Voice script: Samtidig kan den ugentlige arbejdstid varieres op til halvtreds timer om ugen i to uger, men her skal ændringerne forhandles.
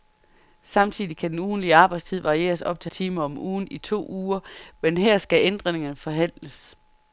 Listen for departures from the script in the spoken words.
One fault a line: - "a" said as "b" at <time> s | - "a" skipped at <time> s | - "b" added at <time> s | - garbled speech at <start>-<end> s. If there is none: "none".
- "halvtreds" skipped at 2.9 s